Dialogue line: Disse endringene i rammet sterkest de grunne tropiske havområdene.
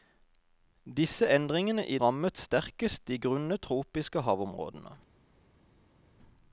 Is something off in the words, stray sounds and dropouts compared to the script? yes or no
no